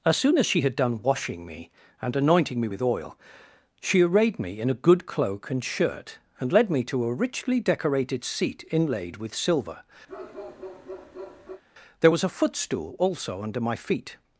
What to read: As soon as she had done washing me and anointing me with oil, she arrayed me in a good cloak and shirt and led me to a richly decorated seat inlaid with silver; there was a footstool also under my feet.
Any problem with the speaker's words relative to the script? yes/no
no